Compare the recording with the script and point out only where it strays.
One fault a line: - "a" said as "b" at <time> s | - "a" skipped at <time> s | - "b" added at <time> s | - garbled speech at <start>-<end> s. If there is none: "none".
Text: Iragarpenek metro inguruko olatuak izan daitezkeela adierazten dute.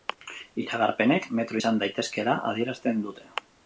- "inguruko olatuak" skipped at 1.6 s